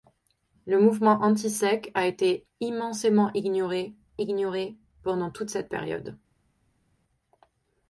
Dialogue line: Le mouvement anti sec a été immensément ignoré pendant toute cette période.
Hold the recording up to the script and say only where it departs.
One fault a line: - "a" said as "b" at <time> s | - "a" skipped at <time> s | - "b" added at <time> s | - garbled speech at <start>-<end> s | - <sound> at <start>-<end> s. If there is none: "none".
- "ignoré" added at 4.2 s